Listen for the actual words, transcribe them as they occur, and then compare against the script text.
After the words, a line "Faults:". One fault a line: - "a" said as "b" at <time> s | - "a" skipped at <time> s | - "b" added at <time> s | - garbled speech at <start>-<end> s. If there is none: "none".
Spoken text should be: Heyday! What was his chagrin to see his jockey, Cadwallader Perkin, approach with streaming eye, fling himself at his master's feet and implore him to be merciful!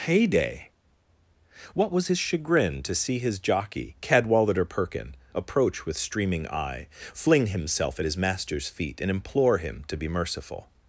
Heyday! What was his chagrin to see his jockey, Cadwallader Perkin, approach with streaming eye, fling himself at his master's feet and implore him to be merciful!
Faults:
none